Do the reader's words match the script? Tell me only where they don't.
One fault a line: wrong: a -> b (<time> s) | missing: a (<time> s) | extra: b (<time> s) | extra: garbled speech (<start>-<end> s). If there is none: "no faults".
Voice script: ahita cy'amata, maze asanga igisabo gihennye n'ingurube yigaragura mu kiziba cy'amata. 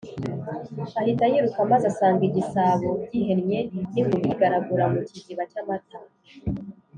wrong: cy'amata -> yiruka (1.3 s)